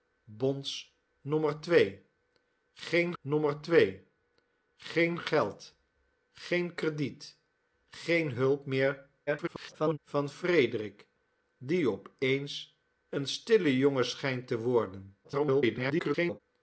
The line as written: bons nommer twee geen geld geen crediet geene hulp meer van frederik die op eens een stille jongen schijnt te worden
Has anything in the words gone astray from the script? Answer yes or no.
yes